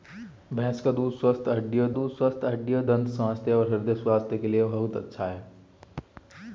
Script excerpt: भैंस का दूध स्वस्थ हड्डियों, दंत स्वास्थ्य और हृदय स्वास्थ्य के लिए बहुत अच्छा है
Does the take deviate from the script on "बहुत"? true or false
false